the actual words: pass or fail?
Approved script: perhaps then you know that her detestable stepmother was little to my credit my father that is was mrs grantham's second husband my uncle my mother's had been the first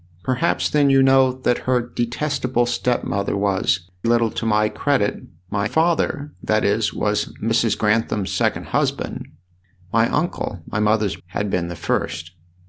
pass